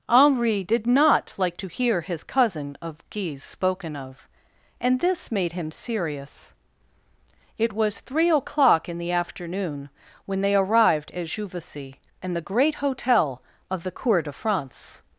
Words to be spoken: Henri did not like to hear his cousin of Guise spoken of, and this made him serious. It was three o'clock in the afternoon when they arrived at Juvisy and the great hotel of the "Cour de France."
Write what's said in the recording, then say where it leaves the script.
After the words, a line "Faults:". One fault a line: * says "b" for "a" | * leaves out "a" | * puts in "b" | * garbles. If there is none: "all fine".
Henri did not like to hear his cousin of Guise spoken of, and this made him serious. It was three o'clock in the afternoon when they arrived at Juvisy and the great hotel of the "Cour de France."
Faults:
all fine